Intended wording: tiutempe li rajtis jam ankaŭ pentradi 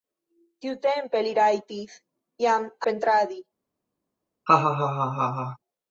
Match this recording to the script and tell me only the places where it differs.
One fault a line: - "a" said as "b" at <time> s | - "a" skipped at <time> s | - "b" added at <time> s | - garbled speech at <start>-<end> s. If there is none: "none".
- "ankaŭ" skipped at 2.7 s